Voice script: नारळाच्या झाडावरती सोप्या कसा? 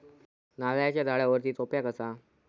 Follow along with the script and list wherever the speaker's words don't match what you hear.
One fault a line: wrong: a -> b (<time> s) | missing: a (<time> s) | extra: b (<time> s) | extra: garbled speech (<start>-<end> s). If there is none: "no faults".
no faults